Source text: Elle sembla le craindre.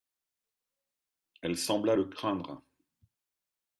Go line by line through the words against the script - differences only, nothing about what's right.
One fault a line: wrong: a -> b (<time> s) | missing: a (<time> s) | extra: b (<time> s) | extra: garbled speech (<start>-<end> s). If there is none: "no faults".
no faults